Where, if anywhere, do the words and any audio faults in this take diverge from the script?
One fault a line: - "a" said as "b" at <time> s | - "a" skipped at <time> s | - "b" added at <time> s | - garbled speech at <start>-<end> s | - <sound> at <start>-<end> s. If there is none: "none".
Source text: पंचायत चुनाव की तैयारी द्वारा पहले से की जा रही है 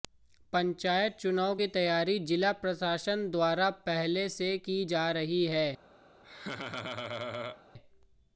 - "जिला प्रशासन" added at 2.3 s
- laugh at 6.2-7.6 s